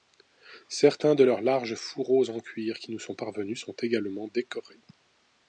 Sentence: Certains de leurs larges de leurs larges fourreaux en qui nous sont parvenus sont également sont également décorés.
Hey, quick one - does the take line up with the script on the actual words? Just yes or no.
no